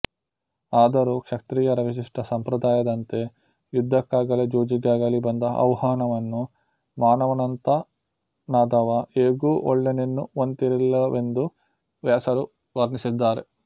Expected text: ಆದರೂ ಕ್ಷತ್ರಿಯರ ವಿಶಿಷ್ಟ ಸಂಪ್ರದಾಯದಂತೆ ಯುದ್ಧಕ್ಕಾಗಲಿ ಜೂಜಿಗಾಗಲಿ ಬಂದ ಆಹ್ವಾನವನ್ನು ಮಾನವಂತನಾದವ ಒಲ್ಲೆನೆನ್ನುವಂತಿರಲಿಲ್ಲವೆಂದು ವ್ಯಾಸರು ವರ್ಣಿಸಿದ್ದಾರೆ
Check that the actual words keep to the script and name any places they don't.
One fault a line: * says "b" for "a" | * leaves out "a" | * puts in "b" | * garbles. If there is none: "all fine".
* puts in "ಹೇಗೂ"